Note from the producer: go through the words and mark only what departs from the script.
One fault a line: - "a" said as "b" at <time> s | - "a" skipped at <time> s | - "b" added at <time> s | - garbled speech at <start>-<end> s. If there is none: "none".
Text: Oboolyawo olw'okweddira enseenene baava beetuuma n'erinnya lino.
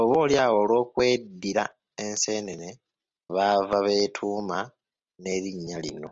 none